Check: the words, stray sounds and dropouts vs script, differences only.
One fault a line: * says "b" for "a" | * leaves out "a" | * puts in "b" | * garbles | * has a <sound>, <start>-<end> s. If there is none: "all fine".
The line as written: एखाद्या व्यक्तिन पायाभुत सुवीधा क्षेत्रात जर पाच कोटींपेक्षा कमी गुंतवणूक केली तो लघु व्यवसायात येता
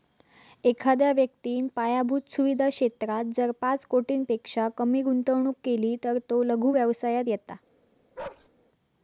* puts in "तर"
* has a bark, 8.2-8.5 s